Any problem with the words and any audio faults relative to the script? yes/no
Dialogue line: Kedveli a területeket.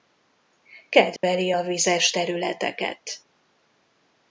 yes